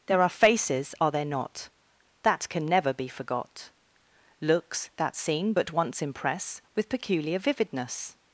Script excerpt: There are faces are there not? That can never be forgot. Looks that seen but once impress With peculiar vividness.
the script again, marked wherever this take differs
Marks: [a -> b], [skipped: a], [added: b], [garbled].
There are faces are there not? That can never be forgot. Looks that seen but once impress With peculiar vividness.